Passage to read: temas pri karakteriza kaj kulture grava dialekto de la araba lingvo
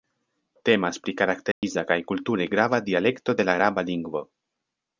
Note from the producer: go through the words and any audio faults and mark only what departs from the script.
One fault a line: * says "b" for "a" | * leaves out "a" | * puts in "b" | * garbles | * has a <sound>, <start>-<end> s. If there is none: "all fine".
* has a dropout, 1.5-1.6 s